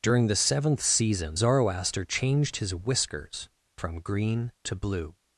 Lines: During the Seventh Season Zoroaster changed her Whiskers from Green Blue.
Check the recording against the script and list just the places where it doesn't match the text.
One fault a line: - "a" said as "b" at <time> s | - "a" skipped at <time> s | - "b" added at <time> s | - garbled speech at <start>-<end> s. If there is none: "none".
- "her" said as "his" at 2.6 s
- "to" added at 4.6 s